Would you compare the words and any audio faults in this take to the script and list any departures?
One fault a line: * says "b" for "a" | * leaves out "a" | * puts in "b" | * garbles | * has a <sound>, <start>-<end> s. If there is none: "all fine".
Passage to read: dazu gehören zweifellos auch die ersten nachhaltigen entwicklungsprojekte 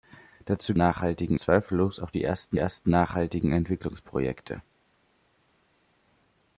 * says "nachhaltigen" for "gehören"
* puts in "ersten"